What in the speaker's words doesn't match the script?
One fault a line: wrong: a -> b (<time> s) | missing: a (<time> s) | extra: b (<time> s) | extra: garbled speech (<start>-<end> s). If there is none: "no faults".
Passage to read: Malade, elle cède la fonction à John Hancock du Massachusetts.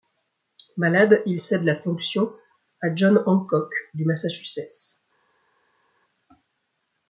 wrong: elle -> il (1.3 s)